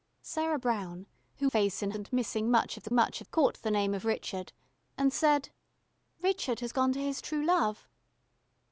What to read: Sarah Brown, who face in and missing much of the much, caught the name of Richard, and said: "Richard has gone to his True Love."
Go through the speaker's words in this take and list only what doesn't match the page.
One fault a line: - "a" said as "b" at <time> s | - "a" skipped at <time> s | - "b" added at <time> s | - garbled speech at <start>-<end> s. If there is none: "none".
none